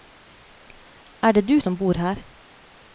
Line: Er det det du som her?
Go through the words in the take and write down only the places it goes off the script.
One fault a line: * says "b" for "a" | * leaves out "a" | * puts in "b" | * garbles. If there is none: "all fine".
* leaves out "det"
* puts in "bor"